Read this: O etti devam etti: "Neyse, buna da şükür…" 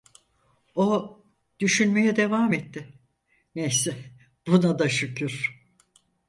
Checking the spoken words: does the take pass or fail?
fail